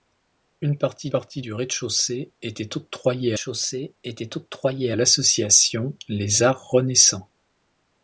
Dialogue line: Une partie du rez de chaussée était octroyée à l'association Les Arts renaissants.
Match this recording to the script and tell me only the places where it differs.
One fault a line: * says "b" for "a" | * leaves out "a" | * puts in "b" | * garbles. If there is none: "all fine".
* puts in "partie"
* puts in "chaussée était octroyée"